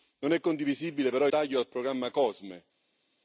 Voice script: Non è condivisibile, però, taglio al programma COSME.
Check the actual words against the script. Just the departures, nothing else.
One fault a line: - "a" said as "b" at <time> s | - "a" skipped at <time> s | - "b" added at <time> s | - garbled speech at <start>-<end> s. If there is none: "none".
none